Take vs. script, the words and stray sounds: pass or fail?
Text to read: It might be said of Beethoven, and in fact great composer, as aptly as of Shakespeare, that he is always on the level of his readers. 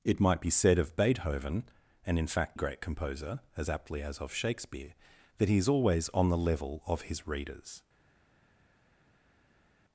pass